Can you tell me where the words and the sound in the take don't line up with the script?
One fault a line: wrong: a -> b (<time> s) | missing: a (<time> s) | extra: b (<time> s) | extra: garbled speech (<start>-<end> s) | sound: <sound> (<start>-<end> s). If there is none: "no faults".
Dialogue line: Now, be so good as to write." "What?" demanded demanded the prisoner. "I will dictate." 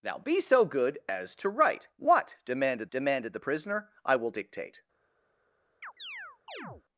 sound: chirp (5.8-6.8 s)